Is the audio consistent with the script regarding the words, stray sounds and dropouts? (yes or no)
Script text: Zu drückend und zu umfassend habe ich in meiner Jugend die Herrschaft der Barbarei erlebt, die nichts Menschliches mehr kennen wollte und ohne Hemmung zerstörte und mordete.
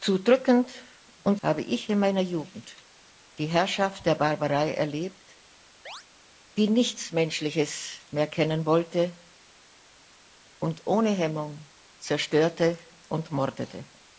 no